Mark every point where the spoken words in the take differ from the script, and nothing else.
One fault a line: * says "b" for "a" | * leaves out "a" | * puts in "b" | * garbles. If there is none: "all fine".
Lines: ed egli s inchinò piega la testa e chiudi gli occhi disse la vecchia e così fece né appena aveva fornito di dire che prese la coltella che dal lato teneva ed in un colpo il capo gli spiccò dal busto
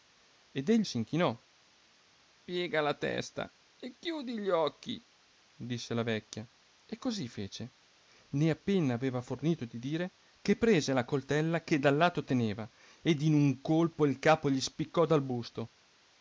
all fine